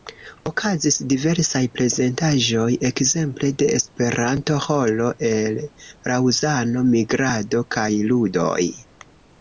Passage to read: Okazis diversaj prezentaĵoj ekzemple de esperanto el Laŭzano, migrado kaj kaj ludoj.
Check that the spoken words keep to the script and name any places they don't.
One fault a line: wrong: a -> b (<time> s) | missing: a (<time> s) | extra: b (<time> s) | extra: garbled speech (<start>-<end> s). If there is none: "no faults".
extra: ĥoro (4.7 s)
missing: kaj (7.9 s)